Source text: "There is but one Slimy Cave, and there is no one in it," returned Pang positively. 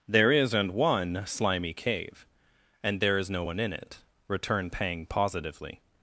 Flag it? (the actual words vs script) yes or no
yes